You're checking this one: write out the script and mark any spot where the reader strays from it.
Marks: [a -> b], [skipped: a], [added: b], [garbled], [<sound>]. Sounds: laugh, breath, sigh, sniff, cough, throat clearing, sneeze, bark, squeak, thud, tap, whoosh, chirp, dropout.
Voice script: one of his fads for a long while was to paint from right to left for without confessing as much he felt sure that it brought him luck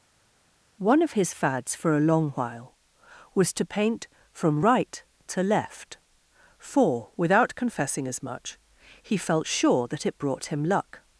one of his fads for a long while was to paint from right to left for without confessing as much he felt sure that it brought him luck